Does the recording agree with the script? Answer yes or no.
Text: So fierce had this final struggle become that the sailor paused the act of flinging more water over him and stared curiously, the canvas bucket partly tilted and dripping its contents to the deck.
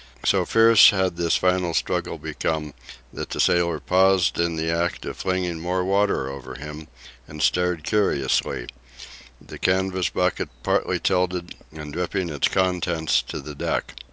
no